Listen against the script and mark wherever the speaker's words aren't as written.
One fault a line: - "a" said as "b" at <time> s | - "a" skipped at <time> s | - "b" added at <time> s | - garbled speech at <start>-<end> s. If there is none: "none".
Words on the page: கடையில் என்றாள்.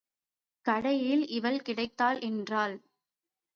- "இவள் கிடைத்தாள்" added at 1.3 s